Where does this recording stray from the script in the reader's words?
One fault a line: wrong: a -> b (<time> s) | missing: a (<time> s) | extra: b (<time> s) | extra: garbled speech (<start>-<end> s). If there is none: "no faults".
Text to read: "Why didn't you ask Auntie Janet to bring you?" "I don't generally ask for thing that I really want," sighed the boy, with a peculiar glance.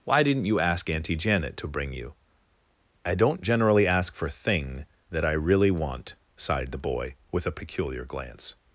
no faults